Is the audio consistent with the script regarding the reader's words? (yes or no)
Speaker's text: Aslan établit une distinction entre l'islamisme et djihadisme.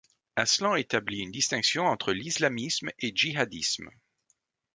yes